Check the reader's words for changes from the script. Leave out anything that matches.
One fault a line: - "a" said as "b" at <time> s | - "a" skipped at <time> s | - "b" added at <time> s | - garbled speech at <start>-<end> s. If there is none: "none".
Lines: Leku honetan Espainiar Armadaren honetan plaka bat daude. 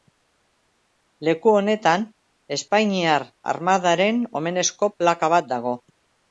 - "honetan" said as "omenezko" at 4.4 s
- "daude" said as "dago" at 5.6 s